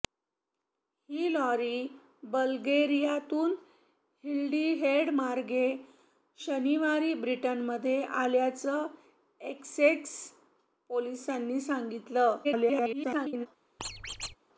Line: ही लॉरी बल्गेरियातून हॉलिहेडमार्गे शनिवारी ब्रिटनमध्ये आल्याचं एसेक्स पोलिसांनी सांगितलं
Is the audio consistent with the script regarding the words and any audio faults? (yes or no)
no